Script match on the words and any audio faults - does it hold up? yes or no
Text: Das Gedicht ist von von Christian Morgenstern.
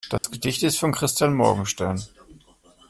no